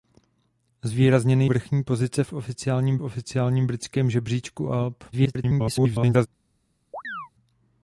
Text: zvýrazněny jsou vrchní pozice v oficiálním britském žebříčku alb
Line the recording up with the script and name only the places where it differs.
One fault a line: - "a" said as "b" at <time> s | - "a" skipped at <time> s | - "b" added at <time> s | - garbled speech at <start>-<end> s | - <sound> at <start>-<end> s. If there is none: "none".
- "jsou" skipped at 1.4 s
- "oficiálním" added at 3.0 s
- garbled speech at 5.1-6.3 s
- chirp at 6.9-7.3 s